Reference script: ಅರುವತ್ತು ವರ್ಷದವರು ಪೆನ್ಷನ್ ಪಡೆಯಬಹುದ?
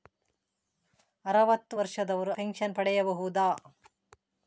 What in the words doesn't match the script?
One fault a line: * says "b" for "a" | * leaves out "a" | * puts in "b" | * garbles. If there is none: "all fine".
all fine